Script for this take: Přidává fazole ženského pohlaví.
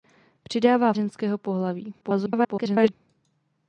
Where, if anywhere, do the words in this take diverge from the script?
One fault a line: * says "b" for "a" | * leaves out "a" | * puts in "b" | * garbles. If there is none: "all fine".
* leaves out "fazole"
* garbles